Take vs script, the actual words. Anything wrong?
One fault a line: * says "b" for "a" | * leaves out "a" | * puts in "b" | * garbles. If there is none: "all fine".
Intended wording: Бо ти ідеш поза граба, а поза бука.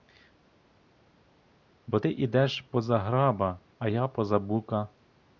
* puts in "я"